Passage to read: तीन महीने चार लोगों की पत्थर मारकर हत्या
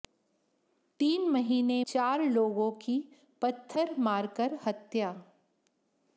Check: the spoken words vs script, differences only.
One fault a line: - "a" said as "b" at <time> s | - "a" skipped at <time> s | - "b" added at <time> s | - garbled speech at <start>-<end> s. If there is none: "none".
none